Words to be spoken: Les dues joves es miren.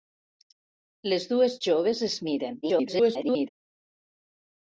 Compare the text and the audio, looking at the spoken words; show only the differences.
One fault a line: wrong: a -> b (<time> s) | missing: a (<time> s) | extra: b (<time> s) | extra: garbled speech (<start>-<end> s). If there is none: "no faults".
extra: garbled speech (2.6-3.5 s)